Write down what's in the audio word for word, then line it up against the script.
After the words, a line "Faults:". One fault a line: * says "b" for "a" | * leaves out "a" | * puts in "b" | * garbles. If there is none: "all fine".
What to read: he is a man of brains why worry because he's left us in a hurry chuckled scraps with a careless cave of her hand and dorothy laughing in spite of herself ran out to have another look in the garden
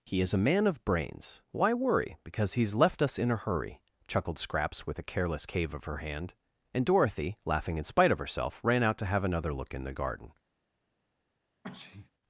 he is a man of brains why worry because he's left us in a hurry chuckled scraps with a careless cave of her hand and dorothy laughing in spite of herself ran out to have another look in the garden
Faults:
all fine